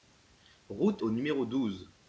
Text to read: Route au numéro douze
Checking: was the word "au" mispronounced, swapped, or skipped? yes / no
no